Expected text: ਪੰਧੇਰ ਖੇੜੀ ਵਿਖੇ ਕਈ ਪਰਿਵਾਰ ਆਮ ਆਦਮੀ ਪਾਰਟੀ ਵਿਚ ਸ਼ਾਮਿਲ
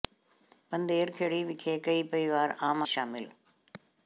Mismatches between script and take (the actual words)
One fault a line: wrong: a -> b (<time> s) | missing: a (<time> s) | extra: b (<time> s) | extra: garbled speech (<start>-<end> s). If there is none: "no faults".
missing: ਆਦਮੀ ਪਾਰਟੀ ਵਿਚ (2.8 s)